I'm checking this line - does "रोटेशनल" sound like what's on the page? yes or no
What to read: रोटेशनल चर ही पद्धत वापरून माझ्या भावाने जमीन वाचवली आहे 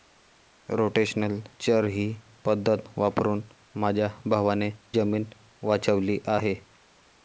yes